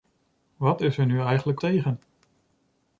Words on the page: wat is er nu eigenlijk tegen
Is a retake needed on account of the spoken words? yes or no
no